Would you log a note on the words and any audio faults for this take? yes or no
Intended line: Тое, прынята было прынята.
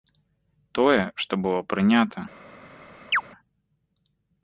yes